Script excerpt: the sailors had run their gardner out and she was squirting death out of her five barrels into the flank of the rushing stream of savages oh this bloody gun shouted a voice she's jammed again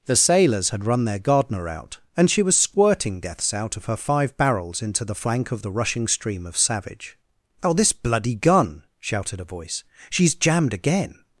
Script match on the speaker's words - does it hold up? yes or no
no